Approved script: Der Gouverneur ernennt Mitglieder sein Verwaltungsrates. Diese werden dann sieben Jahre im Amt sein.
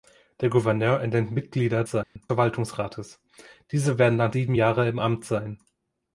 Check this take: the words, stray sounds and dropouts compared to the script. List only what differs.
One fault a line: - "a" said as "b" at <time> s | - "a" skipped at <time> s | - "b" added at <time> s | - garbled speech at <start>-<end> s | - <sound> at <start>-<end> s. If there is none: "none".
- dropout at 2.0-2.2 s